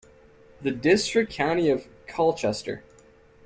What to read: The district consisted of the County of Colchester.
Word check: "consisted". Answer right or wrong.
wrong